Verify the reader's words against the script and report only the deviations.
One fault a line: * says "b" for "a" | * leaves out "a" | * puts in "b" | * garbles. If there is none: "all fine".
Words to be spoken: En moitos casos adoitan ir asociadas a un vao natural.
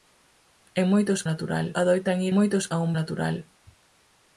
* says "natural" for "casos"
* says "moitos" for "asociadas"
* leaves out "vao"